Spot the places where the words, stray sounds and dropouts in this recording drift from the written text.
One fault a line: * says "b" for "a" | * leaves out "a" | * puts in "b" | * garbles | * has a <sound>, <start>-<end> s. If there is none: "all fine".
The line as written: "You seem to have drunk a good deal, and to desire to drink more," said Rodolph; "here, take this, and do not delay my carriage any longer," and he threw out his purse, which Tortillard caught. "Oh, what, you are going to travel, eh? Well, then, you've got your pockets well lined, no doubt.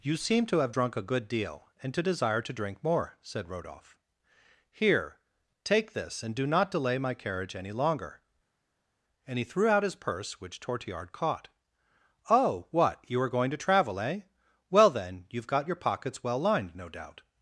all fine